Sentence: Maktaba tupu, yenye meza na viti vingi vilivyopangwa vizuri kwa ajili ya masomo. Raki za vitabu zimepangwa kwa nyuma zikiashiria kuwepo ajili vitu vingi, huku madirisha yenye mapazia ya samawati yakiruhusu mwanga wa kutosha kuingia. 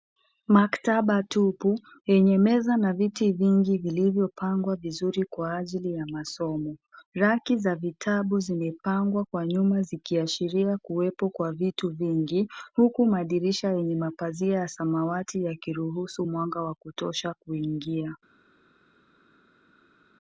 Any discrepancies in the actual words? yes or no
yes